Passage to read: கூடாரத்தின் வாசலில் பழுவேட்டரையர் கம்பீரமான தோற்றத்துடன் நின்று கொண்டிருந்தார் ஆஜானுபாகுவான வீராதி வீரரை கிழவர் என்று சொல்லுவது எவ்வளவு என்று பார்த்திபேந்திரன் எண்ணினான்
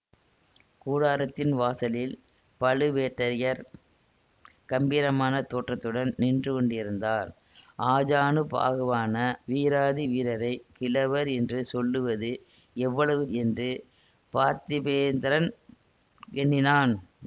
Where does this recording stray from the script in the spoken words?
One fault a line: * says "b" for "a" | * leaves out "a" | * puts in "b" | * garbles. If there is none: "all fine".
all fine